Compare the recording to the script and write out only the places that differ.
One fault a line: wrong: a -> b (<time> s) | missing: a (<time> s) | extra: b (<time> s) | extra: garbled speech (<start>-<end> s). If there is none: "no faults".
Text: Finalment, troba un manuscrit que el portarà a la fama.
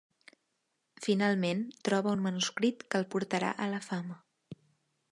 no faults